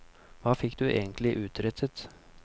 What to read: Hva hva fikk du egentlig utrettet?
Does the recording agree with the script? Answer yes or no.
no